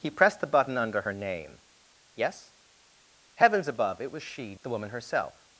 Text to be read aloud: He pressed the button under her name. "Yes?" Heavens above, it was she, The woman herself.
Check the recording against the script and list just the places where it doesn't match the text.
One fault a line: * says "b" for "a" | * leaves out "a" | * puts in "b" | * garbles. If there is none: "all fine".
all fine